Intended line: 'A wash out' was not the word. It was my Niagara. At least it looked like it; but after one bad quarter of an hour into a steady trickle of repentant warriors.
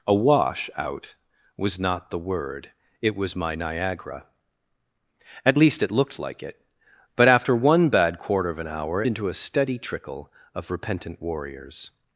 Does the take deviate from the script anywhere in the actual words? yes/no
no